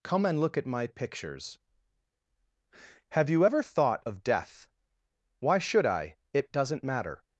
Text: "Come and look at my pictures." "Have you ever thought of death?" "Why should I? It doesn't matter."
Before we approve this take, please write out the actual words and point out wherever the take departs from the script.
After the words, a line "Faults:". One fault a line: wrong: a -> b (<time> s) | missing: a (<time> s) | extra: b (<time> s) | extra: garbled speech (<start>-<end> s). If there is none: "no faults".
"Come and look at my pictures." "Have you ever thought of death?" "Why should I? It doesn't matter."
Faults:
no faults